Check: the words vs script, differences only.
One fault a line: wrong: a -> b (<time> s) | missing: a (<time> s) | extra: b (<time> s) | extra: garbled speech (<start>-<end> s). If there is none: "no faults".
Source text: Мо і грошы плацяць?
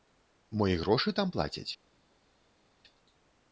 extra: там (1.2 s)